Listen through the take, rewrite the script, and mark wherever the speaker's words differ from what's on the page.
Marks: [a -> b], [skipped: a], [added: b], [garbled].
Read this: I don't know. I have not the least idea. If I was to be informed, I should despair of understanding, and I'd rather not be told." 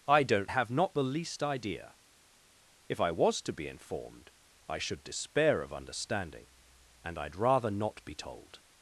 I don't [skipped: know. I] have not the least idea. If I was to be informed, I should despair of understanding, and I'd rather not be told."